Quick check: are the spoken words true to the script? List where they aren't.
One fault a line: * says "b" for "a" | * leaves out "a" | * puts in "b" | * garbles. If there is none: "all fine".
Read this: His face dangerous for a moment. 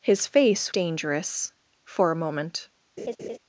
all fine